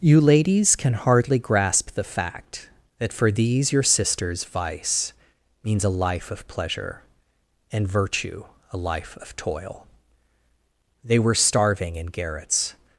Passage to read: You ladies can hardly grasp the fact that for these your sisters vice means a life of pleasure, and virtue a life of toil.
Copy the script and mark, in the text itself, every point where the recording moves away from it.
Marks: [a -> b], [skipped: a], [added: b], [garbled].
You ladies can hardly grasp the fact that for these your sisters vice means a life of pleasure, and virtue a life of toil. [added: They were starving in garrets]